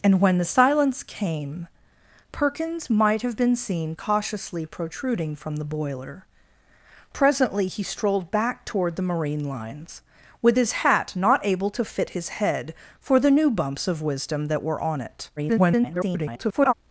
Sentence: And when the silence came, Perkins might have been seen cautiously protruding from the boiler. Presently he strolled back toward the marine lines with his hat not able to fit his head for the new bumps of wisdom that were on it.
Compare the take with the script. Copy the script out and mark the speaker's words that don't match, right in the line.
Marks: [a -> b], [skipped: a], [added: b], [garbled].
And when the silence came, Perkins might have been seen cautiously protruding from the boiler. Presently he strolled back toward the marine lines with his hat not able to fit his head for the new bumps of wisdom that were on it. [garbled]